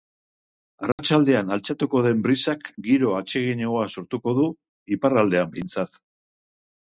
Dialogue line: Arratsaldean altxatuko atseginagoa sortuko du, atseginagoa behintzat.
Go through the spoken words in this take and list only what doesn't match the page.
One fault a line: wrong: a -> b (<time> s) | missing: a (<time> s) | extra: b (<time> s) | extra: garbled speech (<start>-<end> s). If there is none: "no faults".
extra: den brisak giro (2.0 s)
wrong: atseginagoa -> iparraldean (5.0 s)